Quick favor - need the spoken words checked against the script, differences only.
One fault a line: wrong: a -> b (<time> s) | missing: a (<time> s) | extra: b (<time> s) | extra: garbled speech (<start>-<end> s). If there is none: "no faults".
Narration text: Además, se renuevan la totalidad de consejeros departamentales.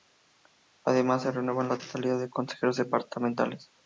no faults